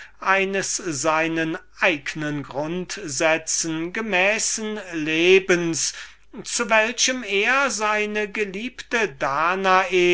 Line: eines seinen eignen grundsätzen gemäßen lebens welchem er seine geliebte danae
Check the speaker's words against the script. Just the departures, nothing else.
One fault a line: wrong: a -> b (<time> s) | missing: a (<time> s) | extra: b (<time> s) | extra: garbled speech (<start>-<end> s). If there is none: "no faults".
extra: zu (6.4 s)